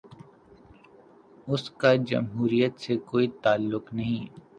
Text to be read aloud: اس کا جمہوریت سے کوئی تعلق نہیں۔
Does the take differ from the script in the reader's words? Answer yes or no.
no